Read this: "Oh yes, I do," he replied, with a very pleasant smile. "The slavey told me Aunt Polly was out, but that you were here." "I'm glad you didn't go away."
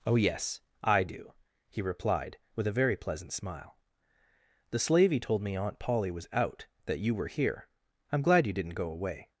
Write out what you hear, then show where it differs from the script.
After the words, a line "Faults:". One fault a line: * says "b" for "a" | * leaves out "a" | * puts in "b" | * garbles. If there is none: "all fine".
"Oh yes, I do," he replied, with a very pleasant smile. "The slavey told me Aunt Polly was out, that you were here." "I'm glad you didn't go away."
Faults:
* leaves out "but"